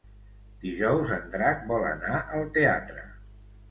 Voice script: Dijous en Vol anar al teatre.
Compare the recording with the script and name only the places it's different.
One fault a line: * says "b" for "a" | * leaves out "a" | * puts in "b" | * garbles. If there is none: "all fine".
* puts in "Drac"